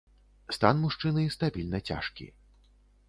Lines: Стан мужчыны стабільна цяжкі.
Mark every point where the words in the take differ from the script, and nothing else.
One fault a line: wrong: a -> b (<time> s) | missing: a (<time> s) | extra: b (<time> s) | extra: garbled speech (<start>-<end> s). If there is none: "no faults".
no faults